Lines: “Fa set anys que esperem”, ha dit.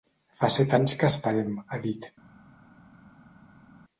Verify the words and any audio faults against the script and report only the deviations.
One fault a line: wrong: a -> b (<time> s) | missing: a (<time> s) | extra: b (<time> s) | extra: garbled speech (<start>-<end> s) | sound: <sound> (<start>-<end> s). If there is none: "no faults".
no faults